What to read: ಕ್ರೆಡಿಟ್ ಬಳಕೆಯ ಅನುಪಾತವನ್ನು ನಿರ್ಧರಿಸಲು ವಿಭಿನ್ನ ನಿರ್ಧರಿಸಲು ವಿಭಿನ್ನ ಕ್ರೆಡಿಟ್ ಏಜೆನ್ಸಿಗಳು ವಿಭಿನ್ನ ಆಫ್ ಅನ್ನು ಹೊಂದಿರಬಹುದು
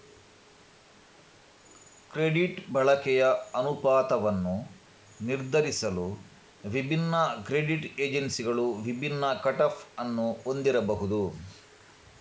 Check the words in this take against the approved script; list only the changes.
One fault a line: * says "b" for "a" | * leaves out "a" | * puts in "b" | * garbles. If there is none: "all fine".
* leaves out "ನಿರ್ಧರಿಸಲು ವಿಭಿನ್ನ"
* puts in "ಕಟ್"